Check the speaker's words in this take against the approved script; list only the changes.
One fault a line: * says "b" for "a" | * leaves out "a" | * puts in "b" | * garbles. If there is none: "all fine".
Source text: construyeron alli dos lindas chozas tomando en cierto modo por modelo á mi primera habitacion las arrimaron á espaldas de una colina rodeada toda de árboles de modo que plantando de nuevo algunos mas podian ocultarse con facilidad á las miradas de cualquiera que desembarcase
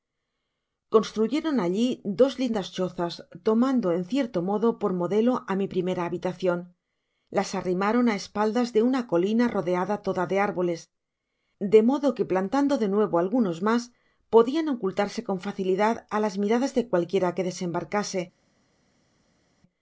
all fine